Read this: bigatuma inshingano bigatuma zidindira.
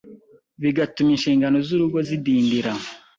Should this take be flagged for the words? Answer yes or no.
yes